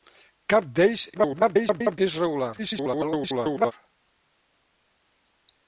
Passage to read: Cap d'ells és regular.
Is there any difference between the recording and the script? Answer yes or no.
yes